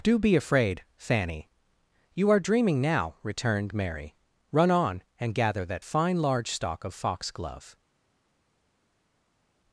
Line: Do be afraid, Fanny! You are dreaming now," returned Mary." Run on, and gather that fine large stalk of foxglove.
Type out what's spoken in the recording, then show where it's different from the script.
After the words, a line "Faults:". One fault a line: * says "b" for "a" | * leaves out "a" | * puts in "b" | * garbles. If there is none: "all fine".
Do be afraid, Fanny! You are dreaming now," returned Mary." Run on, and gather that fine large stalk of foxglove.
Faults:
all fine